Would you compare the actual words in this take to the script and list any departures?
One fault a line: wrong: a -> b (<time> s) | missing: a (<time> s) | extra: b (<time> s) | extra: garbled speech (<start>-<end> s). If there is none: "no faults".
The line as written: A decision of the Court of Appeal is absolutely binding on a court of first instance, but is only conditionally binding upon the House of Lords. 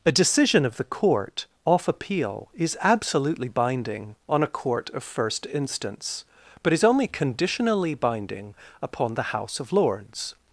wrong: of -> off (1.6 s)